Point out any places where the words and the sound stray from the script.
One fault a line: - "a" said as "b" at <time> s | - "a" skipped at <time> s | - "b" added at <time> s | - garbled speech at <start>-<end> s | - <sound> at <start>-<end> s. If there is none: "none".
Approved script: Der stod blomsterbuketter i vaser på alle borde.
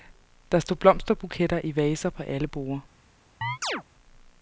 - chirp at 3.4-3.8 s